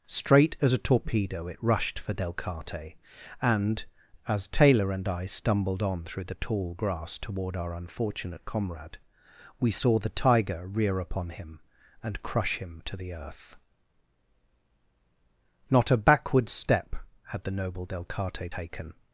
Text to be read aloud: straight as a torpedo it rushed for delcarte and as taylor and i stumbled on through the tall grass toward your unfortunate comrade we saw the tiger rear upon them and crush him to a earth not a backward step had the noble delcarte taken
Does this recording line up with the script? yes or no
no